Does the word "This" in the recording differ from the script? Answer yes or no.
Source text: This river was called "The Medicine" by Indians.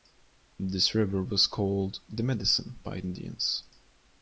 no